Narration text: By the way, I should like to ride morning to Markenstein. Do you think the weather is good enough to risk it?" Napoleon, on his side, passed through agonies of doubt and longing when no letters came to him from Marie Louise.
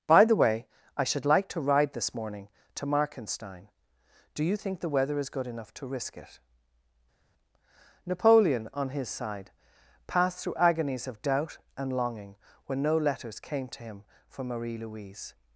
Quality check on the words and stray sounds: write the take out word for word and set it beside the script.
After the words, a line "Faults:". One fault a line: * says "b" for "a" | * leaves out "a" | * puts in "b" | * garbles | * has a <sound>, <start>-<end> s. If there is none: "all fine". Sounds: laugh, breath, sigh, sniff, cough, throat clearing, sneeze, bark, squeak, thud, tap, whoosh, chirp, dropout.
By the way, I should like to ride this morning to Markenstein. Do you think the weather is good enough to risk it?" Napoleon, on his side, passed through agonies of doubt and longing when no letters came to him from Marie Louise.
Faults:
* puts in "this"